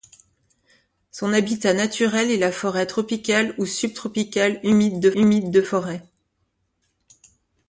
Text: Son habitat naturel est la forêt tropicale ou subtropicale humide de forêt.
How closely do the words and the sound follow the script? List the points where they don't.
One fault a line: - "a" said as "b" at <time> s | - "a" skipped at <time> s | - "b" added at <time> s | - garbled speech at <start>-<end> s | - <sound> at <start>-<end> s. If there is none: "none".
- "humide de" added at 5.1 s